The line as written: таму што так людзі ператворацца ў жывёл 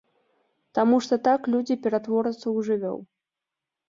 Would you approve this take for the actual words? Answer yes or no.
yes